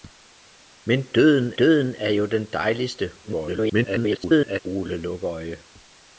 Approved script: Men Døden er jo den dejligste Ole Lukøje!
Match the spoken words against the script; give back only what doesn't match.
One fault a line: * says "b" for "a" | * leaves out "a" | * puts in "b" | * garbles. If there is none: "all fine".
* puts in "Døden"
* garbles